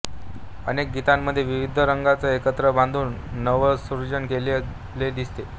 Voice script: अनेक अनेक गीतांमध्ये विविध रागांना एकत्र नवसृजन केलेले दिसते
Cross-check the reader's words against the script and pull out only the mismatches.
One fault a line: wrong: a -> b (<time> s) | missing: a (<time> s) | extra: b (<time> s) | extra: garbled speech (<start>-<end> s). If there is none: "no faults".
missing: अनेक (0.9 s)
extra: बांधून (2.7 s)